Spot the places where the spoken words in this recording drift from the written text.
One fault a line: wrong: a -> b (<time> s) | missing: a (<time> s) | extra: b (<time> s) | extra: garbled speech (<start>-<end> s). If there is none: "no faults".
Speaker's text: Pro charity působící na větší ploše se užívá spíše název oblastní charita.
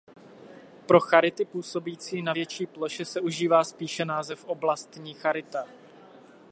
no faults